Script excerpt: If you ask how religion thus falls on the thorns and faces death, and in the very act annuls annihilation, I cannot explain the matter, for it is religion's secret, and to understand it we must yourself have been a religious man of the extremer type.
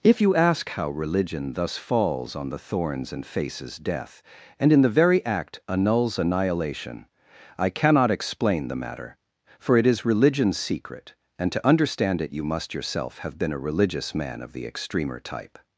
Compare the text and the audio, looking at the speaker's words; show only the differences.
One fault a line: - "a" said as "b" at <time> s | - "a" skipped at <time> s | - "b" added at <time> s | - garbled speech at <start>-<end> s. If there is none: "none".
- "we" said as "you" at 12.3 s